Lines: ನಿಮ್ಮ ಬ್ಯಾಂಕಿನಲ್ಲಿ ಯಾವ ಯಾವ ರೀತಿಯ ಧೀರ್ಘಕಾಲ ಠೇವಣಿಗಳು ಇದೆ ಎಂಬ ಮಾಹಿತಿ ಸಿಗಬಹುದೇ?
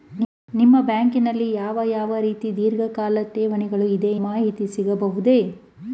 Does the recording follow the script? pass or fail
fail